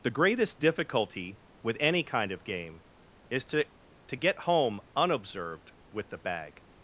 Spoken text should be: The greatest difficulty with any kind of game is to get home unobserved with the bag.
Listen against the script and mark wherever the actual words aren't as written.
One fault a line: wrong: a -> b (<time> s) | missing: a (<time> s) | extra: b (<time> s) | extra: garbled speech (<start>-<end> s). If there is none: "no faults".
extra: to (4.1 s)